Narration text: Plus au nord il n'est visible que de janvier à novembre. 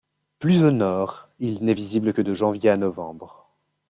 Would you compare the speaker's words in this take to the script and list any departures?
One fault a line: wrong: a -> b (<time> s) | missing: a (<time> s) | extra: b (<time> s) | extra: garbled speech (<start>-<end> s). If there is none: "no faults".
no faults